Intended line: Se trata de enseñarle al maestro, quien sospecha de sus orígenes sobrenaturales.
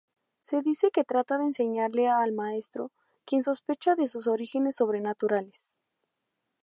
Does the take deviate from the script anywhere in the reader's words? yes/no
yes